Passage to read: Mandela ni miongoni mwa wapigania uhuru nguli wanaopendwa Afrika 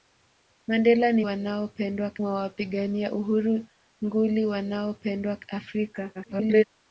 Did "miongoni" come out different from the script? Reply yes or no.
yes